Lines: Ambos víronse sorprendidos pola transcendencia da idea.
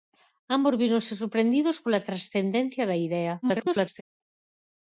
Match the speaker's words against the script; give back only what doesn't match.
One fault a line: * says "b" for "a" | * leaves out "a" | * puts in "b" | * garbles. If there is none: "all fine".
* garbles